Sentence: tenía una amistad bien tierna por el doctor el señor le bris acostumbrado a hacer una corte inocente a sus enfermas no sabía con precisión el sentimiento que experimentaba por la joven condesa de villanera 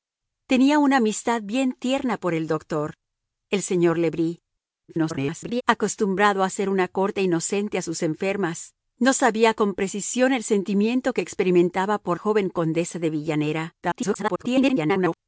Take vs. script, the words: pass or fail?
fail